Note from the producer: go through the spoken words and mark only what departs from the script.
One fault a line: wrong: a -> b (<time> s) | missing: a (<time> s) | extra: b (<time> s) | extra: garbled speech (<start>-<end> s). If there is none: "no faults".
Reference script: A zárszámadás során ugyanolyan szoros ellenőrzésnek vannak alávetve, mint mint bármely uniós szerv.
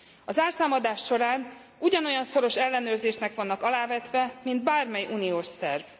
missing: mint (4.6 s)